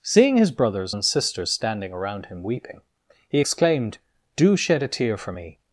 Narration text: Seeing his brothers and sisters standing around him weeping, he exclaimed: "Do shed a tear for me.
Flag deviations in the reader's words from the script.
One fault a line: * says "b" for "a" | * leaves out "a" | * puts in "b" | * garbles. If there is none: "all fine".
all fine